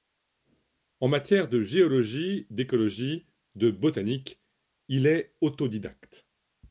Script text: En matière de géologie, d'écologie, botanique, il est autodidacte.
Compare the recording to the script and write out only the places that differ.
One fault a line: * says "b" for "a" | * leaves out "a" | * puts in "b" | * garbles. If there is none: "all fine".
* puts in "de"